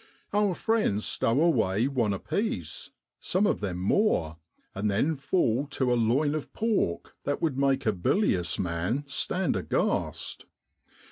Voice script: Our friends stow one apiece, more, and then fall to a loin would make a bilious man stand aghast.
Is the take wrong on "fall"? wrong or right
right